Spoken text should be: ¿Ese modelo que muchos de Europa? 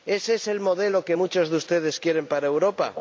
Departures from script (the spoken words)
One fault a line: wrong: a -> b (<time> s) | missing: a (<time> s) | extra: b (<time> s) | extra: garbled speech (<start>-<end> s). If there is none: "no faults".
extra: es el (0.3 s)
extra: ustedes quieren para (1.6 s)